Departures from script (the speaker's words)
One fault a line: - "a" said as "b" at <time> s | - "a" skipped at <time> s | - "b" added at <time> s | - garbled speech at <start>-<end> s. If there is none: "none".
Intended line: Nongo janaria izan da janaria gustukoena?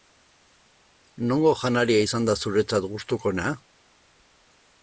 - "janaria" said as "zuretzat" at 2.5 s